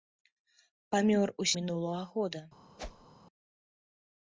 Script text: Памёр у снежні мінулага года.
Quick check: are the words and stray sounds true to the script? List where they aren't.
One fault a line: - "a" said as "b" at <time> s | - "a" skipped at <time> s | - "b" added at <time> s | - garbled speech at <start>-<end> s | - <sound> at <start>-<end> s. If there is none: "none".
- "снежні" skipped at 1.5 s
- whoosh at 2.8-3.1 s